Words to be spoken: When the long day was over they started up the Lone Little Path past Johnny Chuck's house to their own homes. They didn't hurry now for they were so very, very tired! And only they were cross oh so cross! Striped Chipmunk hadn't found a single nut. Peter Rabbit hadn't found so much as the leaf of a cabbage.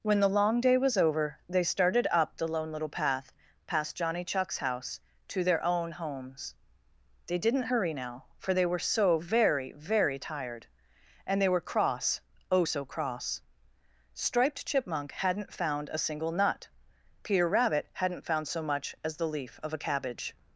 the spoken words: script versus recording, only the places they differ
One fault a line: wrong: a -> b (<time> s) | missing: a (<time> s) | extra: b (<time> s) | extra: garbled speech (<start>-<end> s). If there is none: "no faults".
missing: only (11.4 s)